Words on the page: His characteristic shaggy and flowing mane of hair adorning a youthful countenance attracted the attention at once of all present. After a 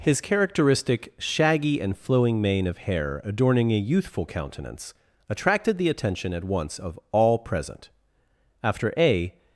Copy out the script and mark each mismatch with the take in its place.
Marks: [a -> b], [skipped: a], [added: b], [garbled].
His characteristic shaggy and flowing mane of hair adorning a youthful countenance attracted the attention at once of all present. After a